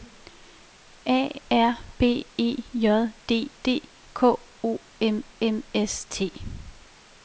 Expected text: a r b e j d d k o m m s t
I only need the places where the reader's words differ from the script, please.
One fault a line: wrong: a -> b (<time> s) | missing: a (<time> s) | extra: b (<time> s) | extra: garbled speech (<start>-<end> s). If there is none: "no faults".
no faults